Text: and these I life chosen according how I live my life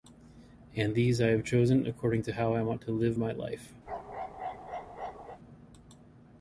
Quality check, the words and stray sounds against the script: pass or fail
fail